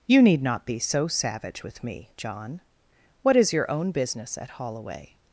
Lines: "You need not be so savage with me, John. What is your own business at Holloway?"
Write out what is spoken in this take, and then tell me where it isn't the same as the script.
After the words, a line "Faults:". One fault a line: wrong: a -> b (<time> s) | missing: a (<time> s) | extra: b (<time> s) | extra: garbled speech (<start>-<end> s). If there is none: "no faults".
"You need not be so savage with me, John. What is your own business at Holloway?"
Faults:
no faults